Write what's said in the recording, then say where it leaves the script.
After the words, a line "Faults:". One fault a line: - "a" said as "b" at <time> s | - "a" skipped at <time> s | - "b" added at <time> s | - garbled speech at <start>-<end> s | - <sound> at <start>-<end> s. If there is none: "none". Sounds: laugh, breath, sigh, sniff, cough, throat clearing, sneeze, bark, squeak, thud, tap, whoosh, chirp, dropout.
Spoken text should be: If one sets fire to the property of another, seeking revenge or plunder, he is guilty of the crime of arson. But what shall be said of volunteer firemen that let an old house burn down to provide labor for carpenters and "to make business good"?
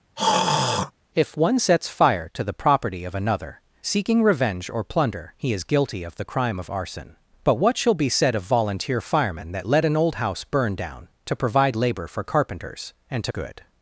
If one sets fire to the property of another, seeking revenge or plunder, he is guilty of the crime of arson. But what shall be said of volunteer firemen that let an old house burn down to provide labor for carpenters and "to good"?
Faults:
- throat clearing at 0.2-0.9 s
- "make business" skipped at 13.3 s